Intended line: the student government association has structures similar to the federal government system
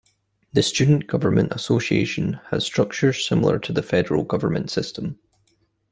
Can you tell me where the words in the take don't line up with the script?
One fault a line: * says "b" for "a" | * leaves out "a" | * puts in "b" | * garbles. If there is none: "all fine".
all fine